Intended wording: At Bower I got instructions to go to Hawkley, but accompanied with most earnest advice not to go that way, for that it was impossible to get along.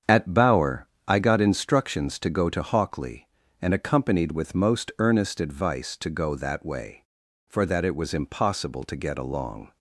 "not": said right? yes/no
no